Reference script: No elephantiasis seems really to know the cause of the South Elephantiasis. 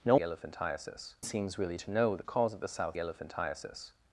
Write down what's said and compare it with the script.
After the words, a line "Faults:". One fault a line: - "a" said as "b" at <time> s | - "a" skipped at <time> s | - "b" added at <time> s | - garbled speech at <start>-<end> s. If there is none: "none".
No elephantiasis seems really to know the cause of the South Elephantiasis.
Faults:
none